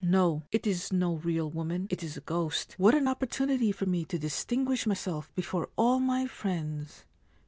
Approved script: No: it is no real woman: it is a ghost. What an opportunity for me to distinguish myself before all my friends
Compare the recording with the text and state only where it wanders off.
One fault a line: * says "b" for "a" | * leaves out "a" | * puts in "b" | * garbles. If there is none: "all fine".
all fine